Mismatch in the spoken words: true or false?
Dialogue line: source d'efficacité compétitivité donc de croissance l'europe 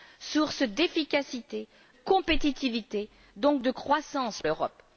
false